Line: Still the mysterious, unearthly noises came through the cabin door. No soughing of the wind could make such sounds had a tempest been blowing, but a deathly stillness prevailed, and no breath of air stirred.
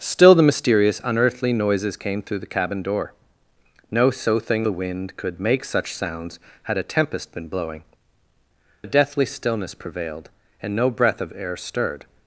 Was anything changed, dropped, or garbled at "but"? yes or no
yes